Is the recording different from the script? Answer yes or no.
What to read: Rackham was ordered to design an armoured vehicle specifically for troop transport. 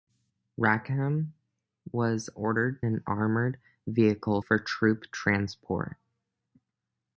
yes